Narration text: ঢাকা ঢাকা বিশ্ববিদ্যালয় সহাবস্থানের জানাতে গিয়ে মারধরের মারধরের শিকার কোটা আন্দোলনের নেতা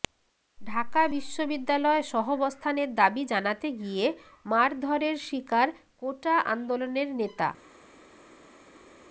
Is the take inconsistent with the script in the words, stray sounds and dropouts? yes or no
yes